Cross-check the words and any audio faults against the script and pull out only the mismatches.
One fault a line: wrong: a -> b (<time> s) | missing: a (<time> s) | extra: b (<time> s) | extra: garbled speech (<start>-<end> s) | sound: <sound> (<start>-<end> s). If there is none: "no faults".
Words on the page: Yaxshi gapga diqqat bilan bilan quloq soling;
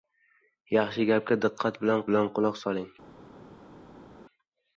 no faults